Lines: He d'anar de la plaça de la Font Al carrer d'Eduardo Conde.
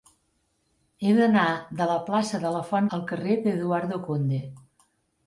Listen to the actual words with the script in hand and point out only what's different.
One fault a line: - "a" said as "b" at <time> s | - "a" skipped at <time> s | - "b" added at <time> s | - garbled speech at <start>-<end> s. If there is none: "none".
none